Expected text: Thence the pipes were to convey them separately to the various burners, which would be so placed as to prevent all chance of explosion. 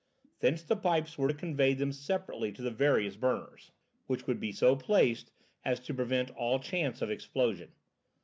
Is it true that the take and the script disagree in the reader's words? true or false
false